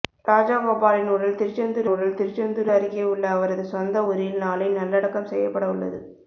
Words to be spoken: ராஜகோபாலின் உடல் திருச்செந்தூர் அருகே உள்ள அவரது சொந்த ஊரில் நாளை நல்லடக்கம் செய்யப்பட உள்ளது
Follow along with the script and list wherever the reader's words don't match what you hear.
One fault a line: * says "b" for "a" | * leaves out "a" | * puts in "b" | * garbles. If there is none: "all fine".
* puts in "உடல் திருச்செந்தூர்"